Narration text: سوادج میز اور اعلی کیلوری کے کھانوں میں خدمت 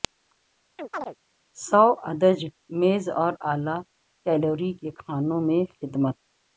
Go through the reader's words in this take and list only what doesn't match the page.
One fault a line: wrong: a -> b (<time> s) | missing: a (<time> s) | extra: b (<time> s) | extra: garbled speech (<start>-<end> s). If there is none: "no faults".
no faults